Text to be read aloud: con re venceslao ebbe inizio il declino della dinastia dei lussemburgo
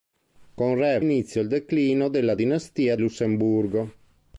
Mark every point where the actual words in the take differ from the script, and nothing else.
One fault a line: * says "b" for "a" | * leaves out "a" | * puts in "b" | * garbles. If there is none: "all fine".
* leaves out "venceslao ebbe"
* leaves out "dei"